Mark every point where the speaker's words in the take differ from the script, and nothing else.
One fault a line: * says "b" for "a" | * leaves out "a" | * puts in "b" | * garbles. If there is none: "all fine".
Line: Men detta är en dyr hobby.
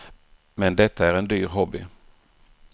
all fine